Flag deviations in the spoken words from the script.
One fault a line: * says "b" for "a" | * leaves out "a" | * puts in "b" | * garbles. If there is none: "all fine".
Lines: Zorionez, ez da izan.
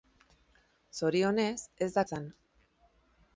all fine